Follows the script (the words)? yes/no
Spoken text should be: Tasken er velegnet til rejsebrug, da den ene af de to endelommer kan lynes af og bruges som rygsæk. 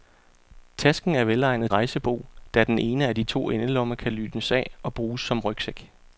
no